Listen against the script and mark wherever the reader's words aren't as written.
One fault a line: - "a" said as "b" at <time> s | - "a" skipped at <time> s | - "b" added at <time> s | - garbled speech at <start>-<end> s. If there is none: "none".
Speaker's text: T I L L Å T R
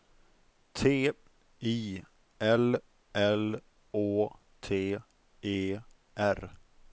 - "E" added at 5.4 s